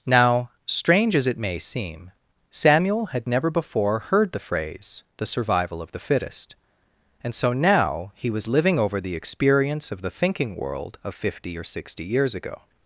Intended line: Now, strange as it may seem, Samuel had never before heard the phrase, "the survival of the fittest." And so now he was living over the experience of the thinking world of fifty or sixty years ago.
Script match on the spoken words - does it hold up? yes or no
yes